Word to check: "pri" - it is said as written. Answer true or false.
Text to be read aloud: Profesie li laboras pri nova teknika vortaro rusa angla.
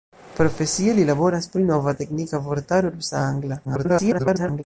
true